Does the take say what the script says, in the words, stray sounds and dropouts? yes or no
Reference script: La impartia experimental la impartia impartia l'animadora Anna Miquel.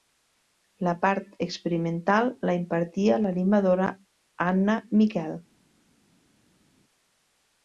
no